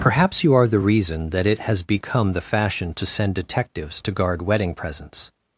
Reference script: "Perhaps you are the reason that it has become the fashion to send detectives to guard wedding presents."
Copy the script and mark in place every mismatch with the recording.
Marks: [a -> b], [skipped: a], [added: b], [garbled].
"Perhaps you are the reason that it has become the fashion to send detectives to guard wedding presents."